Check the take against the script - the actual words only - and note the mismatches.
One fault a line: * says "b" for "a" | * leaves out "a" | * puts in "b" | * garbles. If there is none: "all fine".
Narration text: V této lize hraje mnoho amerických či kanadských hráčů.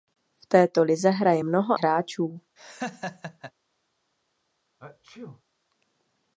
* leaves out "amerických či kanadských"